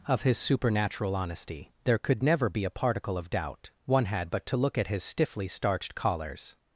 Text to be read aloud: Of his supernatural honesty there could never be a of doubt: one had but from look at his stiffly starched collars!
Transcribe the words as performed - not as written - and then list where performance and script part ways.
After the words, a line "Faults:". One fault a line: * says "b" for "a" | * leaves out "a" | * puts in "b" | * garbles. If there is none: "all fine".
Of his supernatural honesty there could never be a particle of doubt: one had but to look at his stiffly starched collars!
Faults:
* puts in "particle"
* says "to" for "from"